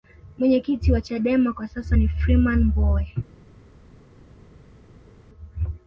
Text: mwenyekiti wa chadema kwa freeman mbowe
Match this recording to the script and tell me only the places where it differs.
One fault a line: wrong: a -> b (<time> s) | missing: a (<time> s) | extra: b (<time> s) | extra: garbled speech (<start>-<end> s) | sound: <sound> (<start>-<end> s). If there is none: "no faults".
extra: sasa ni (1.7 s)